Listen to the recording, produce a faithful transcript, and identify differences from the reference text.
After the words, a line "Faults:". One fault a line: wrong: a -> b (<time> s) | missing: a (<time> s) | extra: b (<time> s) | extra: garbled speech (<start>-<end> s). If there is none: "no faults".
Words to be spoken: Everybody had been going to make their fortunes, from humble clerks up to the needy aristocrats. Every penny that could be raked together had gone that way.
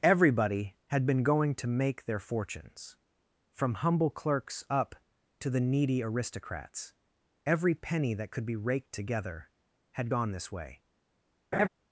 Everybody had been going to make their fortunes, from humble clerks up to the needy aristocrats. Every penny that could be raked together had gone this way.
Faults:
wrong: that -> this (10.3 s)